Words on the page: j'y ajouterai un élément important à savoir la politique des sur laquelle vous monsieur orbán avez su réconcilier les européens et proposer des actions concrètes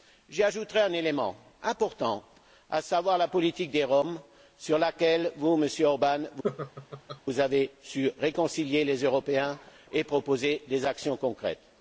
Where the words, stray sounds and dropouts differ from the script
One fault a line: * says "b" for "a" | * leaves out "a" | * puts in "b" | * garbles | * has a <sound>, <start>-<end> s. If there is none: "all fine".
* puts in "roms"
* has a laugh, 6.4-7.2 s